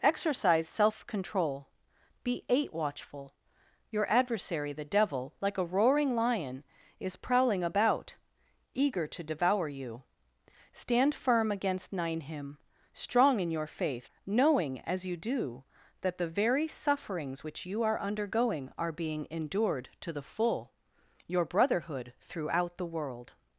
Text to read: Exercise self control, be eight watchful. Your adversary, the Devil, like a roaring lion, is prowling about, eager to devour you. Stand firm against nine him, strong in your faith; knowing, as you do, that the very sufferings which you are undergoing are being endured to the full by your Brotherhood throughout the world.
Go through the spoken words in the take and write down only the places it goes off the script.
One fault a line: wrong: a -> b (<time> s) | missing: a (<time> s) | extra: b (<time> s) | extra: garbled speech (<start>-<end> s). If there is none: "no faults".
missing: by (20.7 s)